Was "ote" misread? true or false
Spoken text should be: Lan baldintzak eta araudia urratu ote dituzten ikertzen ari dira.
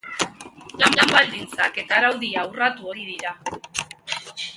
true